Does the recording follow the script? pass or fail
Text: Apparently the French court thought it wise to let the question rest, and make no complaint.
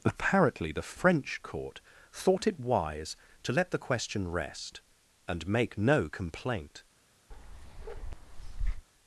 pass